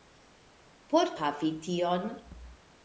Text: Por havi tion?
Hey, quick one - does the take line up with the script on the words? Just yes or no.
yes